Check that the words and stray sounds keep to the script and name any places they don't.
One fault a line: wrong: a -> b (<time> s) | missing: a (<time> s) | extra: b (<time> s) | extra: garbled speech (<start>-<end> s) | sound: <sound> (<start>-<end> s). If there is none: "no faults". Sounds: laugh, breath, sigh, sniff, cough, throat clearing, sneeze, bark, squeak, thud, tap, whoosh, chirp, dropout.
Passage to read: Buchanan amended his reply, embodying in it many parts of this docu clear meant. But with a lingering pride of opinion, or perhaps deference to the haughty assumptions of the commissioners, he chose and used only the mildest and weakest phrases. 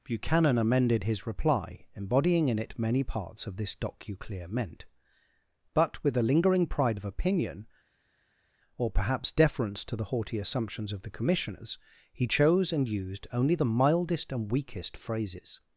no faults